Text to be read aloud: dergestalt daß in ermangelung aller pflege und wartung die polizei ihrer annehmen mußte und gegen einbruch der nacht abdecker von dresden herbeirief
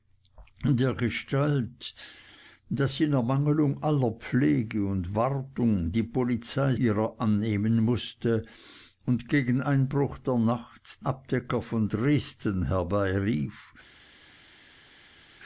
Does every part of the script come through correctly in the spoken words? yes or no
yes